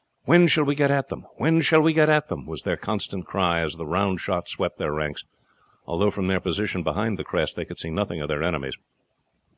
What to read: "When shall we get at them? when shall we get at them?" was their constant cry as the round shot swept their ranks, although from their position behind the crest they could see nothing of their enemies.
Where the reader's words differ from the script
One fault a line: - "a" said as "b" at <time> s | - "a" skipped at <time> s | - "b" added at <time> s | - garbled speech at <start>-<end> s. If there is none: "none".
none